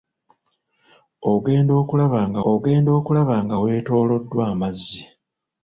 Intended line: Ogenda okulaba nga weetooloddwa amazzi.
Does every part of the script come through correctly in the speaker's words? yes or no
no